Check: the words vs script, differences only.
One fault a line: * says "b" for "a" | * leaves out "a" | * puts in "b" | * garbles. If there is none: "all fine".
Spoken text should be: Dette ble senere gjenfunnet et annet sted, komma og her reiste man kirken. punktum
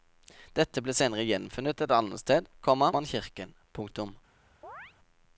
* leaves out "og her reiste"